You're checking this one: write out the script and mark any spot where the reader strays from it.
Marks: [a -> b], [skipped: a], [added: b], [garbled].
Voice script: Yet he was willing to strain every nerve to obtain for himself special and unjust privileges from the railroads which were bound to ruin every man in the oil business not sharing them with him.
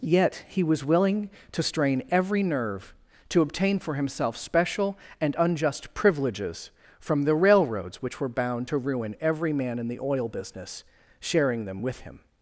Yet he was willing to strain every nerve to obtain for himself special and unjust privileges from the railroads which were bound to ruin every man in the oil business [skipped: not] sharing them with him.